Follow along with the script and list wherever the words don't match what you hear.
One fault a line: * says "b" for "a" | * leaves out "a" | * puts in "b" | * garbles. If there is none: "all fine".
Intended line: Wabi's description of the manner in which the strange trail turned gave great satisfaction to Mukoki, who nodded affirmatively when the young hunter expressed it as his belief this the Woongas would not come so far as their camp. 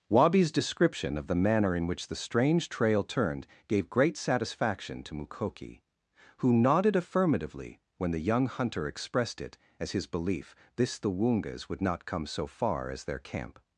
all fine